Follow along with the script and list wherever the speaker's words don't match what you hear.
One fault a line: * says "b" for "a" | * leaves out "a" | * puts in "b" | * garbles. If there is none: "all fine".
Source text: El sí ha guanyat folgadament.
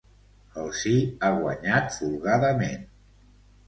all fine